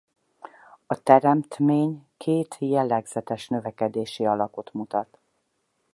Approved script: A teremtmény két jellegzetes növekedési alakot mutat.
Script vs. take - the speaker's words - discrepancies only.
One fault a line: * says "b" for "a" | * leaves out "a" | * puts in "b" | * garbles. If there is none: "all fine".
all fine